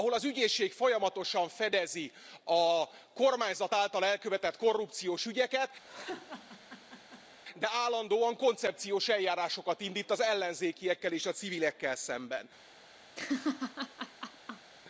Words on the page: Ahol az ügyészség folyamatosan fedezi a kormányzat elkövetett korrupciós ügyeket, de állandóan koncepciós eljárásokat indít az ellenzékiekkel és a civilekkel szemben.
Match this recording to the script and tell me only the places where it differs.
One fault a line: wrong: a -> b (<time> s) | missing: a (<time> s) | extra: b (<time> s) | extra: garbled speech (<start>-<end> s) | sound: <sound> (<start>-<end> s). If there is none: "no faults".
extra: által (3.7 s)
sound: laugh (5.8-7.4 s)
sound: laugh (13.2-14.7 s)